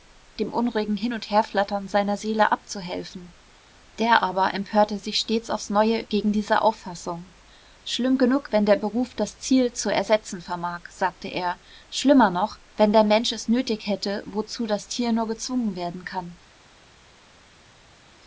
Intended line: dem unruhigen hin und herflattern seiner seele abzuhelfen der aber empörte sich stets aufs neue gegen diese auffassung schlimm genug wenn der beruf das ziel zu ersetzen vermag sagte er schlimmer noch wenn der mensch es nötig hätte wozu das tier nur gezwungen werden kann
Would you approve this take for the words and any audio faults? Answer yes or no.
yes